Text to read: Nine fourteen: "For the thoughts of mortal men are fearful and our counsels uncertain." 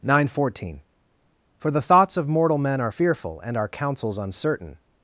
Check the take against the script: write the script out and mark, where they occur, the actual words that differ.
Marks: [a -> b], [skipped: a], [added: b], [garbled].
Nine fourteen: "For the thoughts of mortal men are fearful and our counsels uncertain."